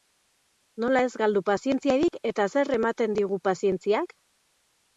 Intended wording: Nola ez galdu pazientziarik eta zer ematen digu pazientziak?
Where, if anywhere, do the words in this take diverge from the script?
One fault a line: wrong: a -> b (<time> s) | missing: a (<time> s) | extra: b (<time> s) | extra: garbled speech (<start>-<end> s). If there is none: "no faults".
no faults